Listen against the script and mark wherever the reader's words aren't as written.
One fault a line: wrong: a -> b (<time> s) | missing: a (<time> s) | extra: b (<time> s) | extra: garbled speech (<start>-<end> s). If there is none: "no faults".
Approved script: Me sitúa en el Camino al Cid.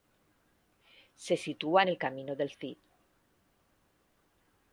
wrong: Me -> Se (1.1 s)
wrong: al -> del (2.4 s)